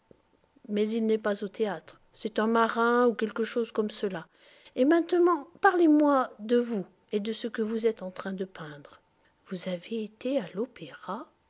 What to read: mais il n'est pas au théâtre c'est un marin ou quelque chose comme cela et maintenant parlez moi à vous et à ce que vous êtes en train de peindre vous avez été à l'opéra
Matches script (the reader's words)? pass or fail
fail